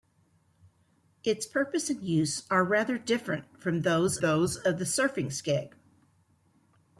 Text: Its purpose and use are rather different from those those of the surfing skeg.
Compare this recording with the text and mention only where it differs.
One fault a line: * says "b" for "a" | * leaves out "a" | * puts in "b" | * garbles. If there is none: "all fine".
all fine